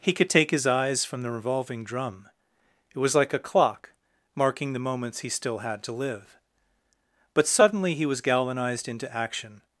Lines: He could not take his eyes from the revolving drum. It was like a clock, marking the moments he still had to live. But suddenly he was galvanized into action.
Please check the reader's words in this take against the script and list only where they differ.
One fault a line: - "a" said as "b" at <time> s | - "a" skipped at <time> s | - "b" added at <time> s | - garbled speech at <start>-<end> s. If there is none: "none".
- "not" skipped at 0.3 s